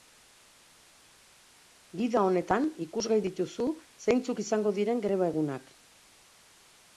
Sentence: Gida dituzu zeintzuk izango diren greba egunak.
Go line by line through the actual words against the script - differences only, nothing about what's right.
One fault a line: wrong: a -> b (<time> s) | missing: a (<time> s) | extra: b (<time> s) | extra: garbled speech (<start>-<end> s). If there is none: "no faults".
extra: honetan ikusgai (2.3 s)